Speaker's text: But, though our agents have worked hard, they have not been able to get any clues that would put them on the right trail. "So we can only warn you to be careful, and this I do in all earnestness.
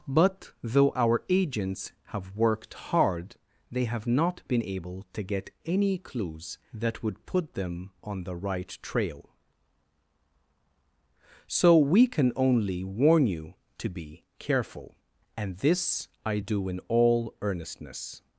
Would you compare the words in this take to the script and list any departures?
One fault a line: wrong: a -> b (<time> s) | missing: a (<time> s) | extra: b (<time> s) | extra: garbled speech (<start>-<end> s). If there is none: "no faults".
no faults